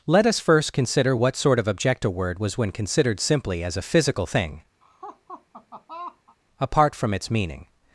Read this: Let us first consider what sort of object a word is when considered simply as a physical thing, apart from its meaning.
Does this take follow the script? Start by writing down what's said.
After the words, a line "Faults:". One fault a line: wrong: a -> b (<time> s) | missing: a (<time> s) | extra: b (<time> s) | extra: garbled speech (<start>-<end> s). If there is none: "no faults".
Let us first consider what sort of object a word was when considered simply as a physical thing, apart from its meaning.
Faults:
wrong: is -> was (2.4 s)